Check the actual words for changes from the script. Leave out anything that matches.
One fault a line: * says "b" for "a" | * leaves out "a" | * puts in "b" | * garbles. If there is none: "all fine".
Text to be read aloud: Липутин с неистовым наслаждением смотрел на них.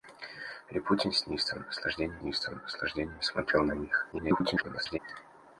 * puts in "неистовым наслаждением"
* garbles